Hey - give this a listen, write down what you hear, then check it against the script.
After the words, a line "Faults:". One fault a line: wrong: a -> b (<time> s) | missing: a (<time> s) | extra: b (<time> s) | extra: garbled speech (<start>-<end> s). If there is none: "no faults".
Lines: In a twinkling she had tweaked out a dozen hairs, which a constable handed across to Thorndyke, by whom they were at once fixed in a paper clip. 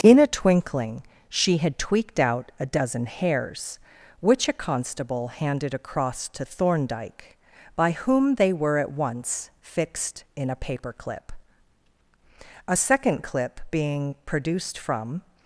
In a twinkling she had tweaked out a dozen hairs, which a constable handed across to Thorndyke, by whom they were at once fixed in a paper clip. A second clip being produced from
Faults:
extra: A second clip being produced from (12.7 s)